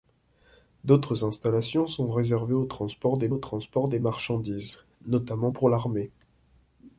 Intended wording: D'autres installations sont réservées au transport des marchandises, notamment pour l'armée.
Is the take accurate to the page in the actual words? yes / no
no